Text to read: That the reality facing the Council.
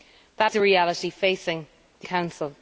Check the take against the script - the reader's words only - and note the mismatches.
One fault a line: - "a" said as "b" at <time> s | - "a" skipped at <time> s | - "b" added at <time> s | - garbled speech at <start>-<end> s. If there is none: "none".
none